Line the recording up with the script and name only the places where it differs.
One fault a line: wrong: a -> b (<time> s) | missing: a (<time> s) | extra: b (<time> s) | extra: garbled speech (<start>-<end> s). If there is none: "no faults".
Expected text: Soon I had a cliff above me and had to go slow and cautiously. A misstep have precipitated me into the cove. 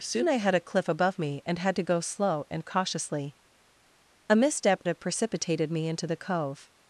no faults